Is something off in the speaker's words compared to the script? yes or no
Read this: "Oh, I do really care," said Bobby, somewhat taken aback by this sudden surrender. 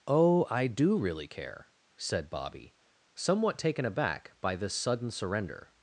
no